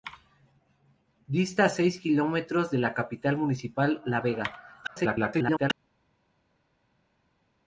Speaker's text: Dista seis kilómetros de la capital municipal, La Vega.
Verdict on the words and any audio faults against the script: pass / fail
fail